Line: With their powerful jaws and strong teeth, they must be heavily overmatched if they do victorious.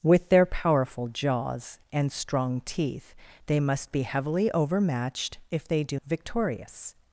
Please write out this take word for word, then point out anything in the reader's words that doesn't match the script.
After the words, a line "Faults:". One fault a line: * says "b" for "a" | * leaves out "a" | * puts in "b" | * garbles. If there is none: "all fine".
With their powerful jaws and strong teeth, they must be heavily overmatched if they do victorious.
Faults:
all fine